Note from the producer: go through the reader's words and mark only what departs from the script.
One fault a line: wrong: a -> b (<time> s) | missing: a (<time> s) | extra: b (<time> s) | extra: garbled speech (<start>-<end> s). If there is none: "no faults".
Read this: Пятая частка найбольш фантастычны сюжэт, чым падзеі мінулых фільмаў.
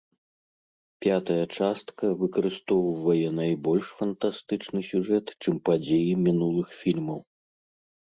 extra: выкарыстоўвае (2.2 s)